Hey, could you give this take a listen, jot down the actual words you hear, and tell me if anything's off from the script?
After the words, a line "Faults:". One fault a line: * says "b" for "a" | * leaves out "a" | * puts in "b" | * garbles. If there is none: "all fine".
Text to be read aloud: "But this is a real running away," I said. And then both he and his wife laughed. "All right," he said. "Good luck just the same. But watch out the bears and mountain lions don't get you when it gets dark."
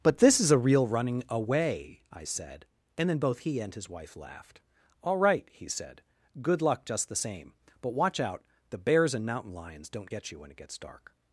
"But this is a real running away," I said. And then both he and his wife laughed. "All right," he said. "Good luck just the same. But watch out the bears and mountain lions don't get you when it gets dark."
Faults:
all fine